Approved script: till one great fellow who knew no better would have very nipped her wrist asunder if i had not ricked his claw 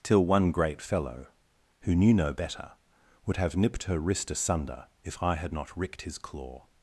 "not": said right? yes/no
yes